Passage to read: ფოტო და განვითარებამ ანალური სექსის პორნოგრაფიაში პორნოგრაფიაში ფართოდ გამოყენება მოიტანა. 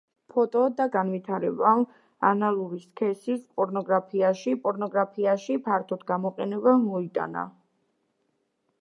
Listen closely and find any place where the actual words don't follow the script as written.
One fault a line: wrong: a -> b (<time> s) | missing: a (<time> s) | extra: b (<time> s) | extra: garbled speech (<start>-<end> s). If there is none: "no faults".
no faults